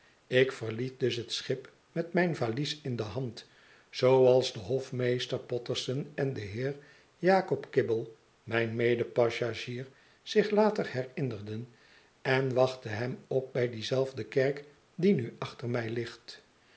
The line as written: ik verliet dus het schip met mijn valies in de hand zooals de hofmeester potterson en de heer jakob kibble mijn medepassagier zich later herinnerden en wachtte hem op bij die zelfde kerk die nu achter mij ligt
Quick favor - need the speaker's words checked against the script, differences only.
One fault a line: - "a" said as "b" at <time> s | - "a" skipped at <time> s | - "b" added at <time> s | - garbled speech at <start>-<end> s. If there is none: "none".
none